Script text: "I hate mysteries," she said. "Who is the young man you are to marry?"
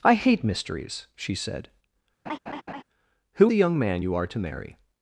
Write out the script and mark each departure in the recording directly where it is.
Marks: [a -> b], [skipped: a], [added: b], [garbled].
"I hate mysteries," she said. "Who [skipped: is] the young man you are to marry?"